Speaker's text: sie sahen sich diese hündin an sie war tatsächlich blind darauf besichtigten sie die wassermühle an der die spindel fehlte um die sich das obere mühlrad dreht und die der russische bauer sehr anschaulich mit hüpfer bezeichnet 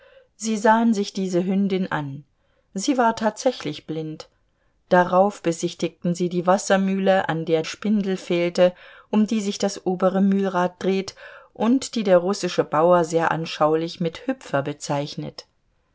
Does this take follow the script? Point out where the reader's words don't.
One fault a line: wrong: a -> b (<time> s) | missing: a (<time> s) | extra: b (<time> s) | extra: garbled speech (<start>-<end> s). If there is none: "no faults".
missing: die (7.6 s)